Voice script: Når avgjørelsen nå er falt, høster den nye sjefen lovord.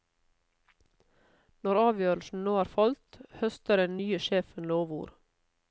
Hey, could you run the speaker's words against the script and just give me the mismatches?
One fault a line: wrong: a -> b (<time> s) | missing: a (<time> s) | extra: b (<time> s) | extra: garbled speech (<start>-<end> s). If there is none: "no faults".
no faults